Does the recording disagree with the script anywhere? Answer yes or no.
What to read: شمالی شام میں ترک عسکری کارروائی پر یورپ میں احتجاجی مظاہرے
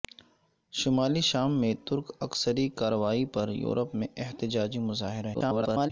yes